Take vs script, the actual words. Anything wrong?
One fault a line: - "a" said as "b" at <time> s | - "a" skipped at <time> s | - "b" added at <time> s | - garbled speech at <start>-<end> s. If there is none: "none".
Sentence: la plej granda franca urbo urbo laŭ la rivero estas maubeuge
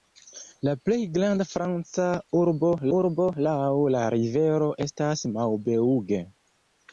none